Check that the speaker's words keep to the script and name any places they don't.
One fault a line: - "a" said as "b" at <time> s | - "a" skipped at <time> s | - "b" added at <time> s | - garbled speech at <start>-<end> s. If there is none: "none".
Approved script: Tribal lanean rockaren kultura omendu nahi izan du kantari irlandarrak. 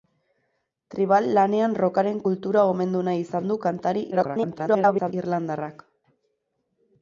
- garbled speech at 4.1-5.1 s